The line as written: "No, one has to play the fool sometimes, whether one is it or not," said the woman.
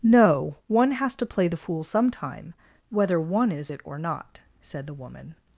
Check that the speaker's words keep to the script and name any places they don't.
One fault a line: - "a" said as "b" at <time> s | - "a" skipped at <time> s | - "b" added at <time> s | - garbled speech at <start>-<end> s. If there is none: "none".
- "sometimes" said as "sometime" at 1.8 s